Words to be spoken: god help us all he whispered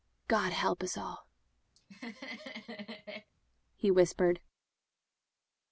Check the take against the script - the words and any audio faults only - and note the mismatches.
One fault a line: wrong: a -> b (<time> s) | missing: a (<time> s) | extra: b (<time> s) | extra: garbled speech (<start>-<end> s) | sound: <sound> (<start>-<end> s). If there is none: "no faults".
sound: laugh (1.8-3.3 s)